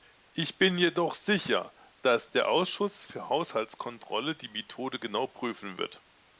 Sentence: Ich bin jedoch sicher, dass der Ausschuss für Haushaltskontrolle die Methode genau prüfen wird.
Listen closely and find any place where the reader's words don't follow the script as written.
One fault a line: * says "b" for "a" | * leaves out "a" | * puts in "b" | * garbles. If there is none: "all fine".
all fine